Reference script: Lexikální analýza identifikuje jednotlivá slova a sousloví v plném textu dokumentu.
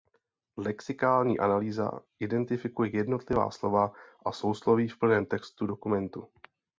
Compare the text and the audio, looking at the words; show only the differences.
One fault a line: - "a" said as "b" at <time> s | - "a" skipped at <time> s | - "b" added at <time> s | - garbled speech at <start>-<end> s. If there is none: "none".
none